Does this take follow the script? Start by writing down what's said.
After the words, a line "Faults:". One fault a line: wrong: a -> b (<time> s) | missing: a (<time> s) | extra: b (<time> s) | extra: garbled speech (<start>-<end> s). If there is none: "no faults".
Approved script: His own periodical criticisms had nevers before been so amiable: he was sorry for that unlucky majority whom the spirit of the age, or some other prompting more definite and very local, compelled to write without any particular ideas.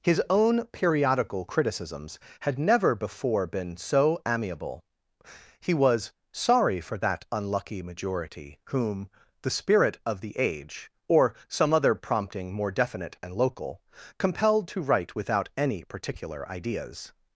His own periodical criticisms had never before been so amiable: he was sorry for that unlucky majority whom the spirit of the age, or some other prompting more definite and local, compelled to write without any particular ideas.
Faults:
wrong: nevers -> never (2.6 s)
missing: very (13.3 s)